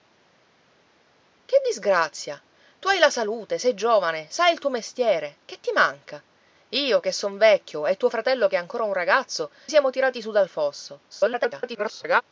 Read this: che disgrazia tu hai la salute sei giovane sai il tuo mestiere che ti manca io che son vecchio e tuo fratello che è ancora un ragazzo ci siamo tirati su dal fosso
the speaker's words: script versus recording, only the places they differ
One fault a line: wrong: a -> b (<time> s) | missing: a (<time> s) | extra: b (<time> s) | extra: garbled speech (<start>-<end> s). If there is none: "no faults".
missing: ci (9.5 s)
extra: garbled speech (11.1-12.2 s)